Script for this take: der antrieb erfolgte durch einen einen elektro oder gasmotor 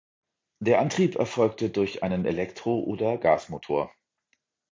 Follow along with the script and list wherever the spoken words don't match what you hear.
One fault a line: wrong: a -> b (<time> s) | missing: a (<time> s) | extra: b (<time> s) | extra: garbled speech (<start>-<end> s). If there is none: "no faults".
missing: einen (2.2 s)